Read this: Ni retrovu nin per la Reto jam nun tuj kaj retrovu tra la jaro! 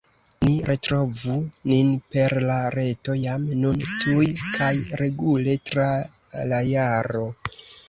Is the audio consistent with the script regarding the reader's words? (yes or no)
no